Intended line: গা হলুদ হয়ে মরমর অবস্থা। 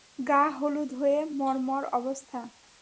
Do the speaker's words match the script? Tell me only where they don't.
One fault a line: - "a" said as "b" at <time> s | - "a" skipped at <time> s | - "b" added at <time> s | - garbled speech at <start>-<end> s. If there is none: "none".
none